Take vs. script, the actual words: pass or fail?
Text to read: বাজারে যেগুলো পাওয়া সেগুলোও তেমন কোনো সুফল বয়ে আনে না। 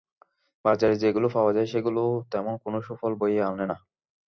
fail